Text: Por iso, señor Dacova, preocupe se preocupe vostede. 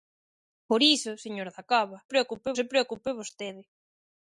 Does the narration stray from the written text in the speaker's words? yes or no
no